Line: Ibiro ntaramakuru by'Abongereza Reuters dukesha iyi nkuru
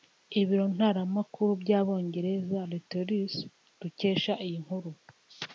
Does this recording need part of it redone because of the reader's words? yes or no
no